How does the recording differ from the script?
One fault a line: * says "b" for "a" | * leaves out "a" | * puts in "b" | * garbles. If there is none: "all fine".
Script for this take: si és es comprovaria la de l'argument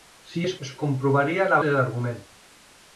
all fine